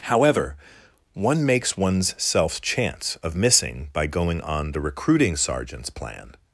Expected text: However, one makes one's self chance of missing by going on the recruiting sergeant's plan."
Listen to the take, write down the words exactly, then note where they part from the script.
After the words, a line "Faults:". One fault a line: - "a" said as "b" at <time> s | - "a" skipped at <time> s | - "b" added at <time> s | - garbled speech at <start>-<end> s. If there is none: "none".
However, one makes one's self chance of missing by going on the recruiting sergeant's plan."
Faults:
none